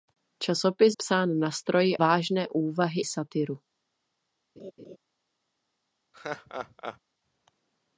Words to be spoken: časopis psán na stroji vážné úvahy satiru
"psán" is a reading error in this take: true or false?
false